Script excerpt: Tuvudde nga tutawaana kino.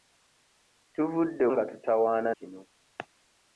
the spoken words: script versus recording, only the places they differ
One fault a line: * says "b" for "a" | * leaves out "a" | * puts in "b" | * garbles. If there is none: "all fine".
all fine